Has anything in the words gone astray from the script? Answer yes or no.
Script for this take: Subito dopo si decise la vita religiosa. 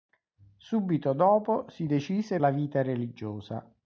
no